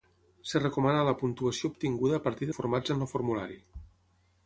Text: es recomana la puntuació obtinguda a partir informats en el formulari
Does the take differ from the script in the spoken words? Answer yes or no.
no